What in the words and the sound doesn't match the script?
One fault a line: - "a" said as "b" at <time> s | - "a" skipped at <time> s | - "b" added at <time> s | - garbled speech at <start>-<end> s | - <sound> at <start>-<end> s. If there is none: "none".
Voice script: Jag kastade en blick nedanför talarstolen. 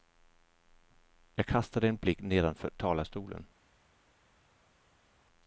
none